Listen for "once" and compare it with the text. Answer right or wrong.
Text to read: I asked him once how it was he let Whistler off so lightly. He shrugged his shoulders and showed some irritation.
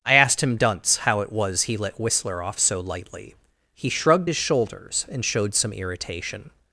wrong